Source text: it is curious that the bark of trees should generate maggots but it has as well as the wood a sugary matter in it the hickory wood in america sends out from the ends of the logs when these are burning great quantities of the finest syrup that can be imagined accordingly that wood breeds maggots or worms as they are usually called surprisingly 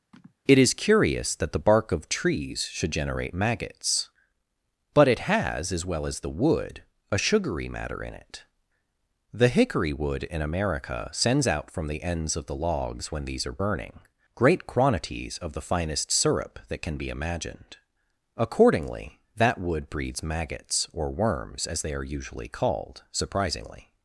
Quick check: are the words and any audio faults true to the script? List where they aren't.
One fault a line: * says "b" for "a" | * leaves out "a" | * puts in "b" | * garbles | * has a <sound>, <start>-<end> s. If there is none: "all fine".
* has a sigh, 0.1-0.4 s